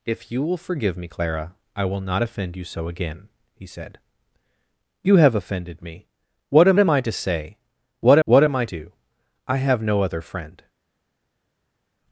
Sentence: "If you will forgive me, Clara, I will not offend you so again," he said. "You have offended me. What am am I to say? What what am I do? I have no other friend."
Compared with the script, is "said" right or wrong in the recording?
right